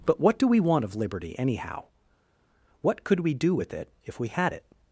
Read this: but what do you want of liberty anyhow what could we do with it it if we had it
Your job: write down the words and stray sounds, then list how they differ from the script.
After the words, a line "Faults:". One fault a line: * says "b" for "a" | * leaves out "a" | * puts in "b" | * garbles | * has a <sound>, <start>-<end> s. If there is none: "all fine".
but what do we want of liberty anyhow what could we do with it if we had it
Faults:
* says "we" for "you"
* leaves out "it"